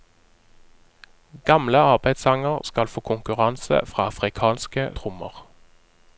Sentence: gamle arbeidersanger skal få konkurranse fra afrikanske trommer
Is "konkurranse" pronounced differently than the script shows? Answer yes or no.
no